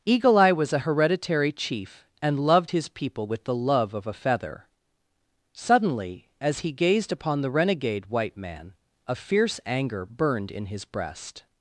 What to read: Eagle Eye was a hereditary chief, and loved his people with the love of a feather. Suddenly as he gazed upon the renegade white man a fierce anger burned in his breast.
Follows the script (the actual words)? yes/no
yes